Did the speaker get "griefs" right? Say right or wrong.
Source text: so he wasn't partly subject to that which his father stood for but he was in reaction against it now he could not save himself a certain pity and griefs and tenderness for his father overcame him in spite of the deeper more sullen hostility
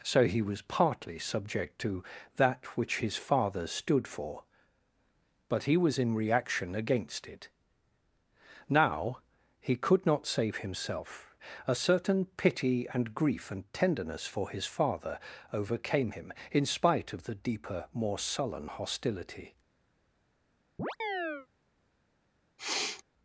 wrong